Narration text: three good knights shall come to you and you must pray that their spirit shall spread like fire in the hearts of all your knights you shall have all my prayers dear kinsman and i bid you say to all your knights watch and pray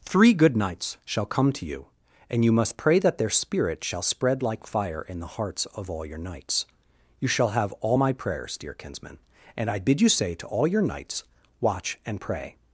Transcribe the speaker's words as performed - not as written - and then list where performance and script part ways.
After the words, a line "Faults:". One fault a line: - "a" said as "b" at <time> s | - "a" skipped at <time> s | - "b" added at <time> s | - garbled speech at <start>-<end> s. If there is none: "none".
three good knights shall come to you and you must pray that their spirit shall spread like fire in the hearts of all your knights you shall have all my prayers dear kinsman and i bid you say to all your knights watch and pray
Faults:
none